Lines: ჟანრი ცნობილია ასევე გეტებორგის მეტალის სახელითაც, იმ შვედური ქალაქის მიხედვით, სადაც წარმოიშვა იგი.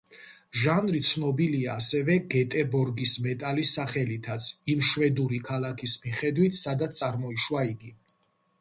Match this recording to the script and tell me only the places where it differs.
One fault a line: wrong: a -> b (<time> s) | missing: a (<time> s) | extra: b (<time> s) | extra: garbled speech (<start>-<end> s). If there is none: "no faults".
no faults